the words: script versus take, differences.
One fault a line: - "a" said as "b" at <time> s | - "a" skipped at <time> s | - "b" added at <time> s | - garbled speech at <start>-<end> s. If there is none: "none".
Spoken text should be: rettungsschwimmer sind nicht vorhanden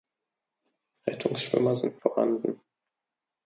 - "nicht" skipped at 2.0 s